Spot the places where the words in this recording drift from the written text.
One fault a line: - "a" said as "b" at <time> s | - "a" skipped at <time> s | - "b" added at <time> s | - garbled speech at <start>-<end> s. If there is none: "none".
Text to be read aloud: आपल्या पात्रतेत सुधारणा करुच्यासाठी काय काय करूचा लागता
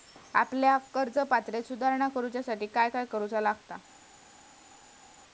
- "कर्ज" added at 0.9 s